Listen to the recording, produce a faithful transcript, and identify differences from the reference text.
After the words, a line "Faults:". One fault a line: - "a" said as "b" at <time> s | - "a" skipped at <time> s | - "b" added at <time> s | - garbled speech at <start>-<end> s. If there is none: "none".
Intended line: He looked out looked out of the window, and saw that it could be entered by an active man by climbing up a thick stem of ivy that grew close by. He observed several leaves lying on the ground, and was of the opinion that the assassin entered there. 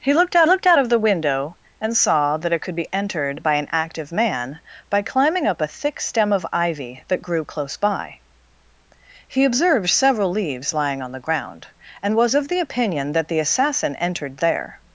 He looked out looked out of the window, and saw that it could be entered by an active man by climbing up a thick stem of ivy that grew close by. He observed several leaves lying on the ground, and was of the opinion that the assassin entered there.
Faults:
none